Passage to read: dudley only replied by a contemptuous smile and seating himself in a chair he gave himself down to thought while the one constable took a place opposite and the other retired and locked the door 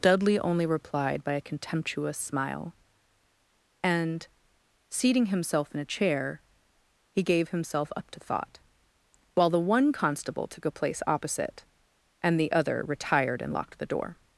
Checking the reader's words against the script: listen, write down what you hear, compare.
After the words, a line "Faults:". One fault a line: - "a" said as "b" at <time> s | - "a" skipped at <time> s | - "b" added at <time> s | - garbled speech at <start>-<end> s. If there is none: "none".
dudley only replied by a contemptuous smile and seating himself in a chair he gave himself up to thought while the one constable took a place opposite and the other retired and locked the door
Faults:
- "down" said as "up" at 8.0 s